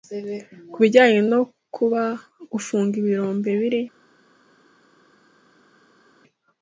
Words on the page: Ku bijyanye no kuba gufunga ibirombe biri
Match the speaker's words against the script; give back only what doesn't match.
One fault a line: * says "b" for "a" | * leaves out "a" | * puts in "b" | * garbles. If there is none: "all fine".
all fine